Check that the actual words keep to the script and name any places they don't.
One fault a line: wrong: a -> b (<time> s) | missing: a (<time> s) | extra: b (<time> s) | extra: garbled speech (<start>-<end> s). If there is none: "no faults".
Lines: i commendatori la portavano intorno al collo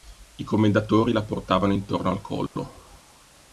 no faults